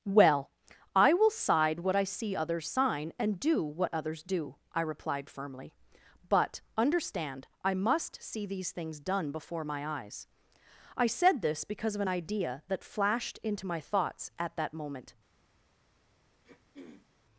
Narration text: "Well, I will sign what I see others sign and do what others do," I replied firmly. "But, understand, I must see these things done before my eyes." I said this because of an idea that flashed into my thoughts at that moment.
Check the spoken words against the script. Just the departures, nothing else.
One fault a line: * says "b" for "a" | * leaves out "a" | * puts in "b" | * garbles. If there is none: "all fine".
* says "side" for "sign"